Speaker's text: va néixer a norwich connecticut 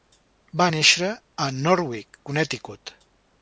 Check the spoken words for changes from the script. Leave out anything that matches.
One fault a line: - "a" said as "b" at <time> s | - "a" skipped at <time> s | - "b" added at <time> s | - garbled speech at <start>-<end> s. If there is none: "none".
none